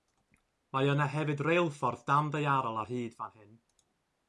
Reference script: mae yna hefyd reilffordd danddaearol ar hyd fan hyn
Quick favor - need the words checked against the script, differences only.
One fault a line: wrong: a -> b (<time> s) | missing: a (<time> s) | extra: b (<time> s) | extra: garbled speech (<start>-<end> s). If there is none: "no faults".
no faults